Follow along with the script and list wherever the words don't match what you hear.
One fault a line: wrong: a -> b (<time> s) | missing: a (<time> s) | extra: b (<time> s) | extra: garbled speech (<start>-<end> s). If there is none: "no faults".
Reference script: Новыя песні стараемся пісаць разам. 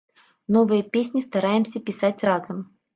no faults